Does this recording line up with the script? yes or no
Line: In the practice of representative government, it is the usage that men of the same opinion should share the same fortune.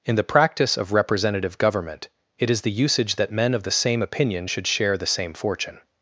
yes